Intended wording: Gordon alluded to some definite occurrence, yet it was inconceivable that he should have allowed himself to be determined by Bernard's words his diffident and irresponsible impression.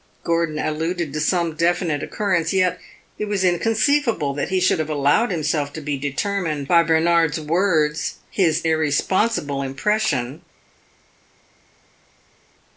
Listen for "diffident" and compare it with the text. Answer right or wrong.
wrong